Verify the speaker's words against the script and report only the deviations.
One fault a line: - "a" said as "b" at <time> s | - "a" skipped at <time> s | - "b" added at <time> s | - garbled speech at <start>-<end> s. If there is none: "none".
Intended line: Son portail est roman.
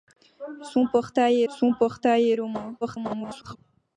- "son portail" added at 1.5 s
- garbled speech at 2.8-3.6 s